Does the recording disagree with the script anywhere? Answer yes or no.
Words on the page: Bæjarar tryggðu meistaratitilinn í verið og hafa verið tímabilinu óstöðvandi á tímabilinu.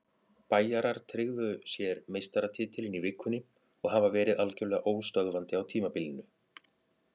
yes